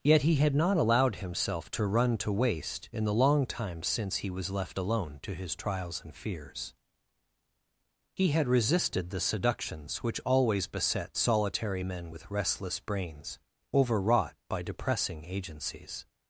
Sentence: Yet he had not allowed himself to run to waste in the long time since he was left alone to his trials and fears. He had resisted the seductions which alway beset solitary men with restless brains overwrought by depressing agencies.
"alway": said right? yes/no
no